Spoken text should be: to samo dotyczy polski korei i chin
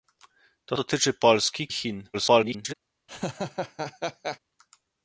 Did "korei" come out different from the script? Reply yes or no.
yes